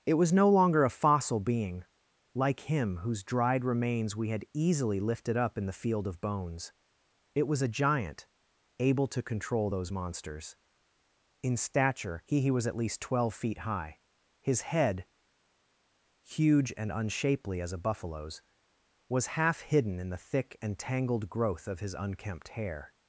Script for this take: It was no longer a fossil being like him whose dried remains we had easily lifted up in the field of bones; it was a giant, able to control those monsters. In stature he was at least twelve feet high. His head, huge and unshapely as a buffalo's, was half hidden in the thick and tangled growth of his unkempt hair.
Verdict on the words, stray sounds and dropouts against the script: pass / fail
fail